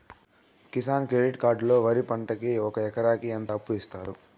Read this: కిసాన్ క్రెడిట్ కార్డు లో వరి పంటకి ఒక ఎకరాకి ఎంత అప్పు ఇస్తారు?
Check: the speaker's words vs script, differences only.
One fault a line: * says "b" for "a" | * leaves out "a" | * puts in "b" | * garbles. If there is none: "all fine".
all fine